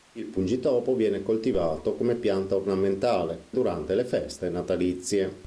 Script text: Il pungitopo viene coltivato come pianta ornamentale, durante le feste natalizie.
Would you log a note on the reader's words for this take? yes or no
no